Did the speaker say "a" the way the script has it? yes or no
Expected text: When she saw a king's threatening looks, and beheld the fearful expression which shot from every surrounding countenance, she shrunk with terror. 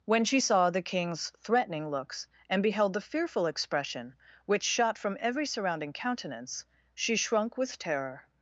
no